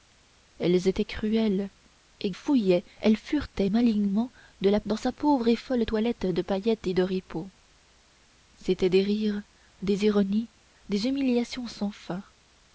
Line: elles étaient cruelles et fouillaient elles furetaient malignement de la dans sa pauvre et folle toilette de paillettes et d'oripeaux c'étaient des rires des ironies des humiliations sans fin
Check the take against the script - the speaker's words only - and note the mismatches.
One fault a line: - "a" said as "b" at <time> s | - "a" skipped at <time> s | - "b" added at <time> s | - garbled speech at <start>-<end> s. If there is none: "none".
none